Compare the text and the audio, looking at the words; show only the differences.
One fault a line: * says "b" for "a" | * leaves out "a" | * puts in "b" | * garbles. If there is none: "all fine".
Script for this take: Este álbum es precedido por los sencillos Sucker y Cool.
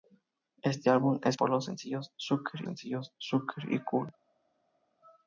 * leaves out "precedido"
* puts in "sencillos Sucker"